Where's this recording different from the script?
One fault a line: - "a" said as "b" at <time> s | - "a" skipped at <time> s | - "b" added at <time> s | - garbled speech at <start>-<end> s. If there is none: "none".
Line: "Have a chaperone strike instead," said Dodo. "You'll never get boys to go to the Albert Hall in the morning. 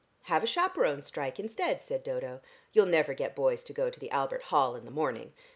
none